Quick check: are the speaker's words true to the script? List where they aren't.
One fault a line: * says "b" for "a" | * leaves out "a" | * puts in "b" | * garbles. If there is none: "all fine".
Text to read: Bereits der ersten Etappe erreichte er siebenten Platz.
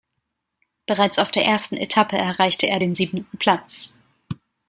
* puts in "auf"
* puts in "den"